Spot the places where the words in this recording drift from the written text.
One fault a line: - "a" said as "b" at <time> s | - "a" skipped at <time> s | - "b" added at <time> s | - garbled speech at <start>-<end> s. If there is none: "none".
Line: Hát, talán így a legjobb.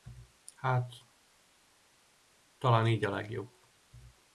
none